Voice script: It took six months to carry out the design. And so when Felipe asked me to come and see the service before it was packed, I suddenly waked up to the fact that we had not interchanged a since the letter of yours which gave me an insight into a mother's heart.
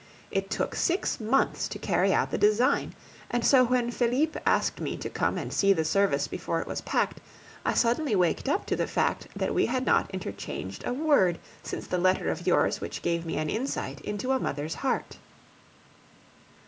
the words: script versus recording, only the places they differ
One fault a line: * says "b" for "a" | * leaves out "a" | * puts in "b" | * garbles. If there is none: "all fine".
* puts in "word"